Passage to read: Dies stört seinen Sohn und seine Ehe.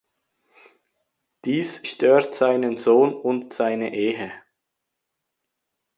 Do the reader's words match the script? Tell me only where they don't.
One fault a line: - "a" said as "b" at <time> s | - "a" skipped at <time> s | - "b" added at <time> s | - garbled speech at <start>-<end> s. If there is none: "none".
none